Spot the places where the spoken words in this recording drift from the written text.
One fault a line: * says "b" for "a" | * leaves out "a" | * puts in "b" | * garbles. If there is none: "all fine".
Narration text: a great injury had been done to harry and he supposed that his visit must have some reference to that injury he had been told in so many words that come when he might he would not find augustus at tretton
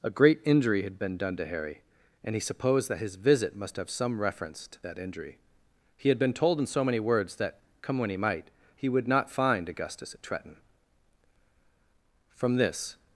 * puts in "from this"